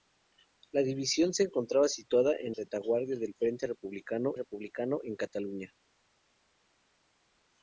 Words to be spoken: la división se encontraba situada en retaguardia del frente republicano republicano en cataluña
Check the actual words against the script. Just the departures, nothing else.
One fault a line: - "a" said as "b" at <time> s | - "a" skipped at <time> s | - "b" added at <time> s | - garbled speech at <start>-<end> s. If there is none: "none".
none